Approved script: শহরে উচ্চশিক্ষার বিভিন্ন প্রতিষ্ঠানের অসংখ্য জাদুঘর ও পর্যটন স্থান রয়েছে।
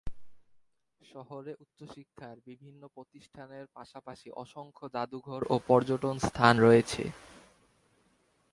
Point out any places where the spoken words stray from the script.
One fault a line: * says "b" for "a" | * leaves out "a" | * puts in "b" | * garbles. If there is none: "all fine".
* puts in "পাশাপাশি"